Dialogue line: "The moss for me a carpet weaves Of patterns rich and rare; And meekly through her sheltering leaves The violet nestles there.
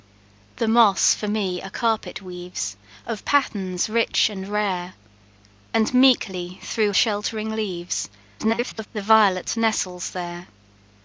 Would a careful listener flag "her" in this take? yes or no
yes